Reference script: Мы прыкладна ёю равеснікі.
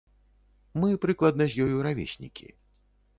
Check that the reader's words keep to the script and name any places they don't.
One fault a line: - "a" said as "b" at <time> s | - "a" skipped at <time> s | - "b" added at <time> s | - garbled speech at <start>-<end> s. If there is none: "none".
- "з" added at 1.5 s